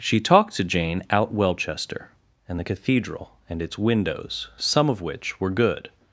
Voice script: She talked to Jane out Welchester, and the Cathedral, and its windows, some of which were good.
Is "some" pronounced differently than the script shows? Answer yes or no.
no